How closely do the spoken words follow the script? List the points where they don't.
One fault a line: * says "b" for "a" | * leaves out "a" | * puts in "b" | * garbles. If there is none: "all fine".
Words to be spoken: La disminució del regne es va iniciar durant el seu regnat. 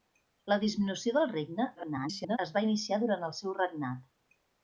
* garbles